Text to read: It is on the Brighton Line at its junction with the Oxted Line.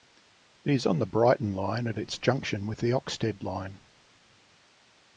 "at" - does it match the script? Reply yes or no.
yes